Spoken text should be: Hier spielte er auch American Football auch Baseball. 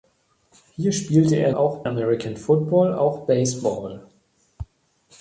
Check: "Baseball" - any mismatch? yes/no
no